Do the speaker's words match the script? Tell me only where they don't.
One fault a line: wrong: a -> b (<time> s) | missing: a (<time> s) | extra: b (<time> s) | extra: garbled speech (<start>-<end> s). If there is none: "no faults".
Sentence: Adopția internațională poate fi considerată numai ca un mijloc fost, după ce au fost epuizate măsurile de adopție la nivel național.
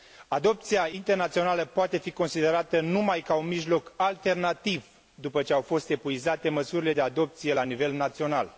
wrong: fost -> alternativ (4.0 s)